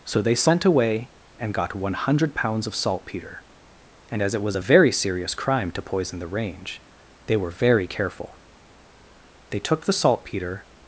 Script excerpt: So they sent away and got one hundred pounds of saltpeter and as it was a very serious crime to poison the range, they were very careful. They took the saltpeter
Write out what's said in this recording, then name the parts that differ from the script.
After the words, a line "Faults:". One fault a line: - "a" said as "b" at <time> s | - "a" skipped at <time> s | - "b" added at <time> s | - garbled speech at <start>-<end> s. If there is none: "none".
So they sent away and got one hundred pounds of saltpeter and as it was a very serious crime to poison the range, they were very careful. They took the saltpeter
Faults:
none